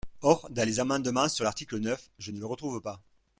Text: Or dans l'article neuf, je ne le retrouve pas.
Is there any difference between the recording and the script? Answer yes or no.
yes